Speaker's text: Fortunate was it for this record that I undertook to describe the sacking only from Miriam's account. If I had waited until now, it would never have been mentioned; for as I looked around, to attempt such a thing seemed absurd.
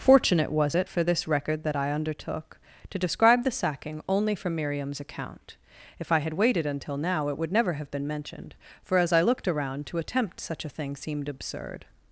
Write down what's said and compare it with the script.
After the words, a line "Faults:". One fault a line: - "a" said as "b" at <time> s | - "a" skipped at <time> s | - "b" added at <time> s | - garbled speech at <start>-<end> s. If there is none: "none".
Fortunate was it for this record that I undertook to describe the sacking only from Miriam's account. If I had waited until now, it would never have been mentioned; for as I looked around, to attempt such a thing seemed absurd.
Faults:
none